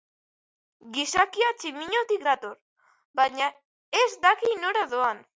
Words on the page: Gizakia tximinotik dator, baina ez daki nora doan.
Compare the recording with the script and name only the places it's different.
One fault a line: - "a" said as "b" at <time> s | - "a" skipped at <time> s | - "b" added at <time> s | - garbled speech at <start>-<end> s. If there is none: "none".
none